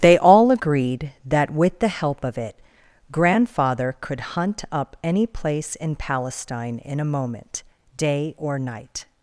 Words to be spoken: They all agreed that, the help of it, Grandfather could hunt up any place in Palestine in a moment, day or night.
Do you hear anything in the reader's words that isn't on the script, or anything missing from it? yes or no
yes